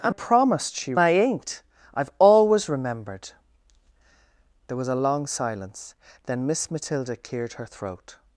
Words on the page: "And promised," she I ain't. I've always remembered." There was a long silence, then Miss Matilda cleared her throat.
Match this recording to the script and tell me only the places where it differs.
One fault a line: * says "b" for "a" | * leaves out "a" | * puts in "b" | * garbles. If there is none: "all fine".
all fine